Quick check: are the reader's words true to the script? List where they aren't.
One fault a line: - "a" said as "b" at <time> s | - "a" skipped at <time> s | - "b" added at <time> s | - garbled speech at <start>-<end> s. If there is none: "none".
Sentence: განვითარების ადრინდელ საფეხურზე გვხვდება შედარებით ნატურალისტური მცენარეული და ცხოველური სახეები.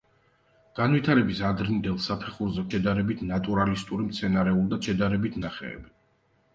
- "გვხვდება" skipped at 2.6 s
- "ცხოველური" said as "შედარებით" at 4.8 s